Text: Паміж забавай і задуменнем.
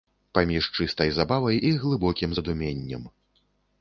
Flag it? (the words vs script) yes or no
yes